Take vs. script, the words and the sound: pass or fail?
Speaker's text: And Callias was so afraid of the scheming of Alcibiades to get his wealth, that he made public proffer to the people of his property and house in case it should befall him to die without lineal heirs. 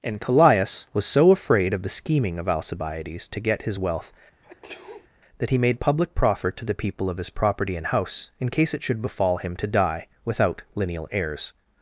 fail